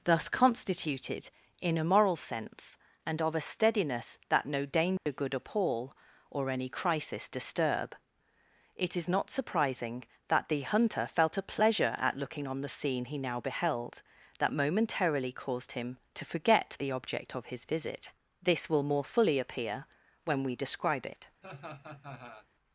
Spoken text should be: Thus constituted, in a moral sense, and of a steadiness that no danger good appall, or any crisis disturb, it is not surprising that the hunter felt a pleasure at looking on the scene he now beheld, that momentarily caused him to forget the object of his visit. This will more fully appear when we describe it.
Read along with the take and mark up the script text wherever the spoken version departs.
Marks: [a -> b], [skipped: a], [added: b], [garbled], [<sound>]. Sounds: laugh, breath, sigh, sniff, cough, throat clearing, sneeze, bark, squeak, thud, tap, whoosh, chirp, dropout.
Thus constituted, in a moral sense, and of a steadiness that no danger [dropout] good appall, or any crisis disturb, it is not surprising that the hunter felt a pleasure at looking on the scene he now beheld, that momentarily caused him to forget the object of his visit. This will more fully appear when we describe it. [laugh]